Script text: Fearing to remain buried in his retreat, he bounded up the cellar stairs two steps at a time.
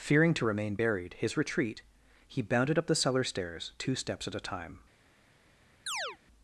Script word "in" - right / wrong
wrong